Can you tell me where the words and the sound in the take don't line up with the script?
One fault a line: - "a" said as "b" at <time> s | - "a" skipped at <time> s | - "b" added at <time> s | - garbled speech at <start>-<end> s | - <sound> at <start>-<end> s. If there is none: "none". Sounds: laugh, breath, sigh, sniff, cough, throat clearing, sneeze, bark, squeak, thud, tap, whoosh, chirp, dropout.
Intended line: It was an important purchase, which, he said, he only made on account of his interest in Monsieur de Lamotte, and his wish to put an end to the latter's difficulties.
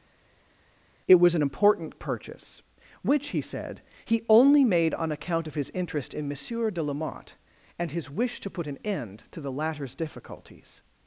none